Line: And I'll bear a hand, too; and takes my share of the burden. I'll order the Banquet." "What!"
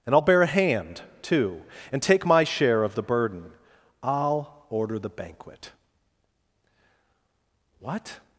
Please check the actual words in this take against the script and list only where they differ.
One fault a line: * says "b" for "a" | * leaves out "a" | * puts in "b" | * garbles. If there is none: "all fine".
* says "take" for "takes"